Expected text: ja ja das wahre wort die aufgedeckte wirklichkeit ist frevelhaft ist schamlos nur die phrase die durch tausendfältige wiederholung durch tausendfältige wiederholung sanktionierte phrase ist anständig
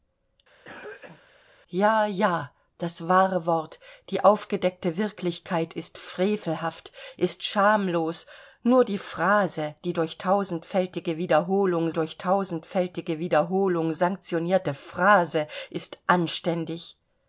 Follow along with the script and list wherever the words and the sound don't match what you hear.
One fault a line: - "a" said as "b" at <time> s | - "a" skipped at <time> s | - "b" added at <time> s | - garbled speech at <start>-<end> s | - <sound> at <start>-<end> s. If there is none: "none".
- cough at 0.6-1.3 s